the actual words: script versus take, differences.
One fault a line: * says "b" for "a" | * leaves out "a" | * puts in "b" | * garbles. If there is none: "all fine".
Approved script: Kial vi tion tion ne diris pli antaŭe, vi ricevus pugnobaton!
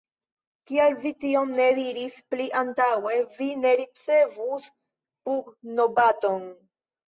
* leaves out "tion"
* puts in "ne"